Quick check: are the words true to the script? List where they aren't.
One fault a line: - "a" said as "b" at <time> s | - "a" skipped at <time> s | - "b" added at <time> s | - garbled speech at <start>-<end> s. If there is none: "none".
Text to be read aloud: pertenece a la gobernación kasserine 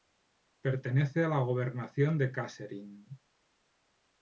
- "de" added at 2.2 s